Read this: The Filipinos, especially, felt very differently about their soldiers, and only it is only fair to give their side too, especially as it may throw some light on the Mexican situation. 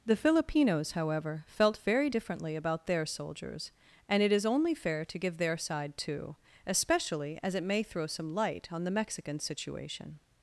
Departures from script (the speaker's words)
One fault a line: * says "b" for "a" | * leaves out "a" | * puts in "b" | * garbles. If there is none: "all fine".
* says "however" for "especially"
* leaves out "only"